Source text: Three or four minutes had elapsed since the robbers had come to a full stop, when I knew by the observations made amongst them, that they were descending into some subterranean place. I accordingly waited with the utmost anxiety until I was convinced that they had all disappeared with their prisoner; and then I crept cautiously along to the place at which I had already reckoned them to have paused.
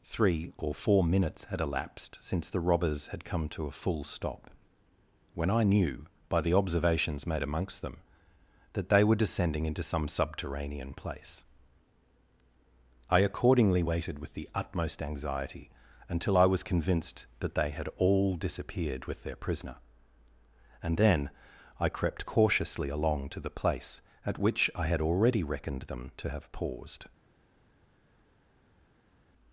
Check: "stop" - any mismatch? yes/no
no